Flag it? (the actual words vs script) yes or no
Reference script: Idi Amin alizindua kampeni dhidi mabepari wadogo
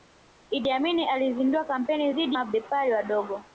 no